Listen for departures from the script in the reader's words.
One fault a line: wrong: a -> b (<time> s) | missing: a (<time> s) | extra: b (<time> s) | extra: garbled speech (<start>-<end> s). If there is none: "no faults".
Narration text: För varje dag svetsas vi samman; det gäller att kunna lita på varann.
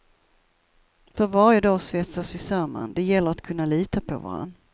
no faults